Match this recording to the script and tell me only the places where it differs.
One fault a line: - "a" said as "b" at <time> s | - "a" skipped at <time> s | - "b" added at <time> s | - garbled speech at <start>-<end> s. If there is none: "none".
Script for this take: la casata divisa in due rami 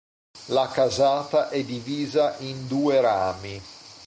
- "è" added at 1.5 s